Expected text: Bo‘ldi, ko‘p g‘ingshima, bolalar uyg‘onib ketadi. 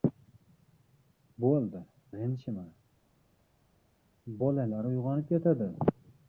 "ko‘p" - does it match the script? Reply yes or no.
no